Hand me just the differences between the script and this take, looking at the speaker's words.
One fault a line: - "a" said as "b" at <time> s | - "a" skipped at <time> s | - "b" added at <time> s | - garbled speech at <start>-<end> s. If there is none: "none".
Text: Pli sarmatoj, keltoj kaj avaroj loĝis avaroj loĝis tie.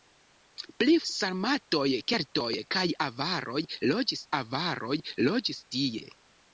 none